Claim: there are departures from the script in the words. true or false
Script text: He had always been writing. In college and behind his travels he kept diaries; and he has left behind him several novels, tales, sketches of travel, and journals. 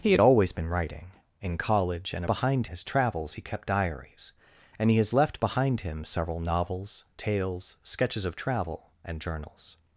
false